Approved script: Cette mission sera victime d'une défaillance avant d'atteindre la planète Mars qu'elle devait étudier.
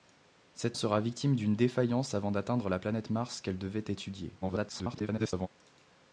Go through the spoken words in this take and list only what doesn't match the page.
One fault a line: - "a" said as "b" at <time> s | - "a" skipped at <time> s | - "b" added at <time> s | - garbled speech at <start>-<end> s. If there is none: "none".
- "mission" skipped at 0.8 s
- garbled speech at 4.4-5.5 s